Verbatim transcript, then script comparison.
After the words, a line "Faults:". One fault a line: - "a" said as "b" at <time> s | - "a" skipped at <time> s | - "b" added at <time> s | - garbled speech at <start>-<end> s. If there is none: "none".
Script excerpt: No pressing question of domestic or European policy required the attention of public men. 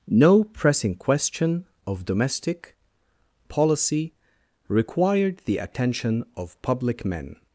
No pressing question of domestic policy required the attention of public men.
Faults:
- "or European" skipped at 2.8 s